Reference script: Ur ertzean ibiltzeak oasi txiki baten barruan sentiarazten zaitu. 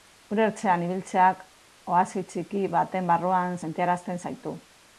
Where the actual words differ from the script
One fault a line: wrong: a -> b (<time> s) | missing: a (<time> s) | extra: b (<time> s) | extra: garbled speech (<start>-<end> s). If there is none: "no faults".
no faults